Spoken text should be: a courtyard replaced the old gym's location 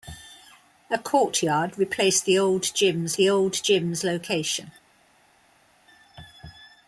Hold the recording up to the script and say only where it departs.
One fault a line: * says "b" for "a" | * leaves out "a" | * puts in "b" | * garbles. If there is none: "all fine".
* puts in "the old gym's"